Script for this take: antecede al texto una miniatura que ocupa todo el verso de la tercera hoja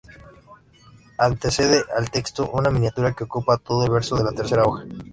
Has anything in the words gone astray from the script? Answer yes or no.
no